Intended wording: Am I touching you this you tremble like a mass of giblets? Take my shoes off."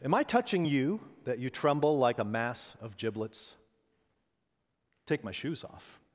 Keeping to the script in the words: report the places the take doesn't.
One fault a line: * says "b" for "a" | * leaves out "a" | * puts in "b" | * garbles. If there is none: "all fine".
* says "that" for "this"